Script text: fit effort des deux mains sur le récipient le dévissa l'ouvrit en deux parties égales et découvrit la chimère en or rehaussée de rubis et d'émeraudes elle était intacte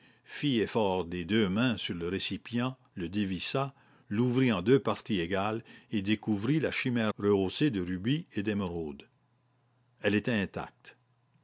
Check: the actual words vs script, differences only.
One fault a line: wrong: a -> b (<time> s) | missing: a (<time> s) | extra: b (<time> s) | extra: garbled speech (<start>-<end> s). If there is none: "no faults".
missing: en or (7.1 s)